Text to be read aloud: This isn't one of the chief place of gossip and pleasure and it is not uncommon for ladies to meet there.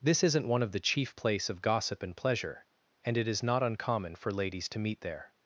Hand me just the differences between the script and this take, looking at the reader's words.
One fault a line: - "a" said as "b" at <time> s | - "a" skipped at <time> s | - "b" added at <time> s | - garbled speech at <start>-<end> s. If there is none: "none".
none